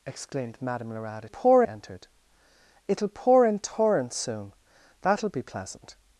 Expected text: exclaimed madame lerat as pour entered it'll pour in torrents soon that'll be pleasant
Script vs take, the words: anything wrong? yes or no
no